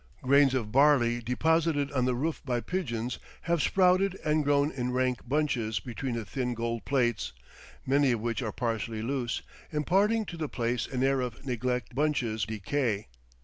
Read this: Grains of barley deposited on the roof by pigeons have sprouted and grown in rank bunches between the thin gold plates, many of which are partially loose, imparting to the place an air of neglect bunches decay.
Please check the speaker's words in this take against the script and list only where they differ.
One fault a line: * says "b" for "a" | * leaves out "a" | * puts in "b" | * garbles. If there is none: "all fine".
all fine